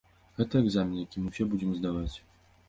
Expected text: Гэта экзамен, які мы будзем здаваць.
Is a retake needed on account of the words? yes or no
yes